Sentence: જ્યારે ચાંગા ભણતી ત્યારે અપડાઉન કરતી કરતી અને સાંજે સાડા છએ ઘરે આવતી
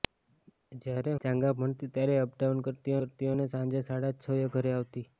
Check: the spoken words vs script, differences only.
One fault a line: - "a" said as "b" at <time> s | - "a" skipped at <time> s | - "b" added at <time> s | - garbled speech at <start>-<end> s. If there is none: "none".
none